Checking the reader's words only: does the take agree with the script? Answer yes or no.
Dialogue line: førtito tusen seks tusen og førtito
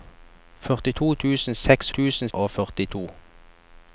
yes